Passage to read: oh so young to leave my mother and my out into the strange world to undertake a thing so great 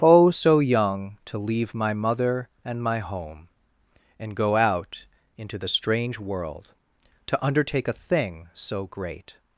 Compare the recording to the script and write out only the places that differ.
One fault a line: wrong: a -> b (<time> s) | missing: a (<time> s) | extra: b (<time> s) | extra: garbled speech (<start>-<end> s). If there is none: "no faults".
extra: home and go (3.0 s)